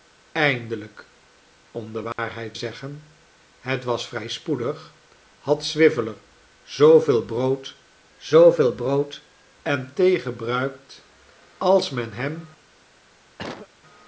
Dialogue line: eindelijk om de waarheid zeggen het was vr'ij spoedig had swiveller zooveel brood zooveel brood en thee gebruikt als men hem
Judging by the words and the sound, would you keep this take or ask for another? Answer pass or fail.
fail